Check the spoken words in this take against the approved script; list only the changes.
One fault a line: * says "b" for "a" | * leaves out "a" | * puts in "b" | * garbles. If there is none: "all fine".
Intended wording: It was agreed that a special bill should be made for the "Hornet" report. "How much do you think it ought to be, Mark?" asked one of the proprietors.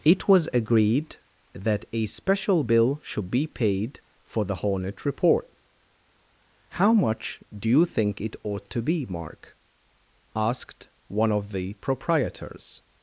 * says "paid" for "made"